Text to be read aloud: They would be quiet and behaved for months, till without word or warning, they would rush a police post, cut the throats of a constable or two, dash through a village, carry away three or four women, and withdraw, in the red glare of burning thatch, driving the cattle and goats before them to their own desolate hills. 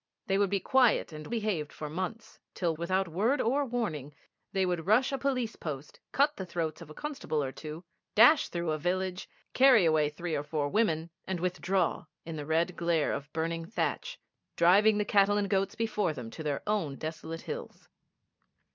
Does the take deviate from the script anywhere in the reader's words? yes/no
no